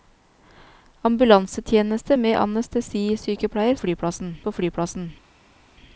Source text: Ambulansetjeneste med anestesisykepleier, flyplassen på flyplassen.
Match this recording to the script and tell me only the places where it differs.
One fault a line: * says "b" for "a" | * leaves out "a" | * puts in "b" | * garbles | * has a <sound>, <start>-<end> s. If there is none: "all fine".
all fine